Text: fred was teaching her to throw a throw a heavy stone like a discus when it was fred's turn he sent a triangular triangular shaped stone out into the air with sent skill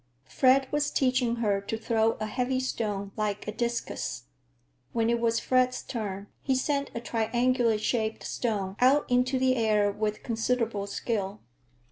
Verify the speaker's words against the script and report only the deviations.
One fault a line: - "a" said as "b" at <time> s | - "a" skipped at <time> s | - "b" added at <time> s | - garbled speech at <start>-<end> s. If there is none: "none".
- "throw a" skipped at 2.2 s
- "triangular" skipped at 7.8 s
- "sent" said as "considerable" at 10.2 s